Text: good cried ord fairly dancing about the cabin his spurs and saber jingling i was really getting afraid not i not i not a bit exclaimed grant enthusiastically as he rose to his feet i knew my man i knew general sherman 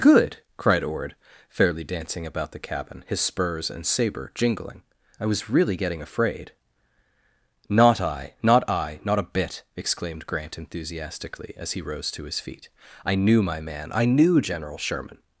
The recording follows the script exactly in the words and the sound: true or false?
true